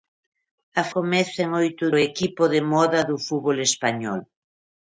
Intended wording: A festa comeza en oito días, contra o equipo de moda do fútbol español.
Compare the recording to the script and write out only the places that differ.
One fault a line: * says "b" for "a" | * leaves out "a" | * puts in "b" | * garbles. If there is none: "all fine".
* leaves out "festa"
* leaves out "días contra"